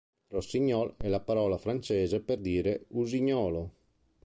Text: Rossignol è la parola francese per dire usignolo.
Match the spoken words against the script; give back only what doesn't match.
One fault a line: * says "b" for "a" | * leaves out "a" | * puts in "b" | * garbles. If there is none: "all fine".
all fine